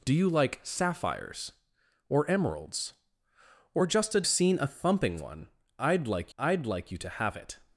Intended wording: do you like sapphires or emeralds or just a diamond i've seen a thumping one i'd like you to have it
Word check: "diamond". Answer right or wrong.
wrong